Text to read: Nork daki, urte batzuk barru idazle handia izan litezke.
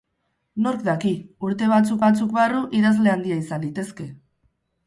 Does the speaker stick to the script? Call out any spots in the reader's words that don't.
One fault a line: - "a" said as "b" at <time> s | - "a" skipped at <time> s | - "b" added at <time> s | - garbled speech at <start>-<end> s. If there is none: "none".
- "batzuk" added at 2.0 s